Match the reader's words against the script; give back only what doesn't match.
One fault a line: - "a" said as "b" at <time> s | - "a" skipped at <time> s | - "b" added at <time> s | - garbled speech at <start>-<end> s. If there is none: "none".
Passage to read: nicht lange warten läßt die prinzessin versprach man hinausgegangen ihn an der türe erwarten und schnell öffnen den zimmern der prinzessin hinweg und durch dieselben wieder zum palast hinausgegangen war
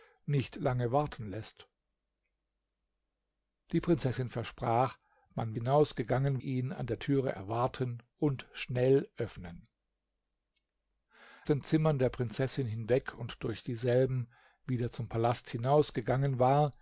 none